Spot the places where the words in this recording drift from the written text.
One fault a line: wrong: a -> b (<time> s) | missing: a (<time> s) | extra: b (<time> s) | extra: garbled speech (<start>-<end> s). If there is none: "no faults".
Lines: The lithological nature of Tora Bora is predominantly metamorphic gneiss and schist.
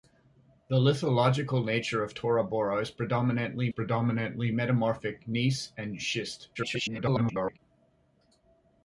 extra: predominantly (3.7 s)
extra: garbled speech (6.5-7.6 s)